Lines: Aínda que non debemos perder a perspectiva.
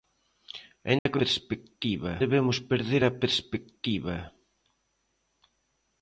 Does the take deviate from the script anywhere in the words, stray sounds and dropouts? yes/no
yes